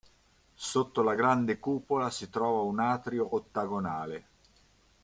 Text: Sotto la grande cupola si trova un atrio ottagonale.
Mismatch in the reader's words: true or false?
false